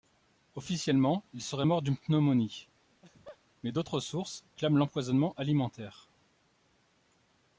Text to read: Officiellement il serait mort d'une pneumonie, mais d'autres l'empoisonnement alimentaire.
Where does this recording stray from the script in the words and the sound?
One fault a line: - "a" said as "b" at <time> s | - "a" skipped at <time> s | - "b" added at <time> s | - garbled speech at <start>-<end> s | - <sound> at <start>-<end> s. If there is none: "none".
- laugh at 2.9-3.4 s
- "sources clament" added at 4.0 s